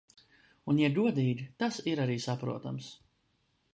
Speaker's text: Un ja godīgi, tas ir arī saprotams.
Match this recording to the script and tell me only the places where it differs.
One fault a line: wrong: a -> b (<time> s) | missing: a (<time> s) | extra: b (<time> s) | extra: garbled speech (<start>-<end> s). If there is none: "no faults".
no faults